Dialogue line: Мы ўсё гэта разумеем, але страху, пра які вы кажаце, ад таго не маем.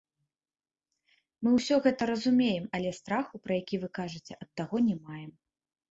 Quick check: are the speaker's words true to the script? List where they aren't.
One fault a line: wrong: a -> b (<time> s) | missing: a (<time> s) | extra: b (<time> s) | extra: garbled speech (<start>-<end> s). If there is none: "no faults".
no faults